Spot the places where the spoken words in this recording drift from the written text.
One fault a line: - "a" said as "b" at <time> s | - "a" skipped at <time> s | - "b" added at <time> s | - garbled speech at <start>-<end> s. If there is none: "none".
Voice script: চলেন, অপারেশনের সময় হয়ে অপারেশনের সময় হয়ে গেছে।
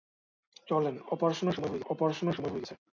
none